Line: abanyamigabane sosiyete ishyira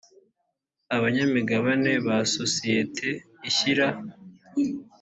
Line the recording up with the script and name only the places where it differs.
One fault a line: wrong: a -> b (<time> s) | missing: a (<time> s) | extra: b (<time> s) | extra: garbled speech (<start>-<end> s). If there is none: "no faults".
extra: ba (2.0 s)